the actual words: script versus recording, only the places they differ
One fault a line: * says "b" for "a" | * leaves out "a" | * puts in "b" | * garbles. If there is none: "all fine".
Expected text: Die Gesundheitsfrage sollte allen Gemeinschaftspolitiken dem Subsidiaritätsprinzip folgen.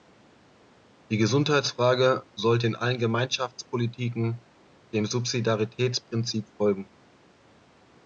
* puts in "in"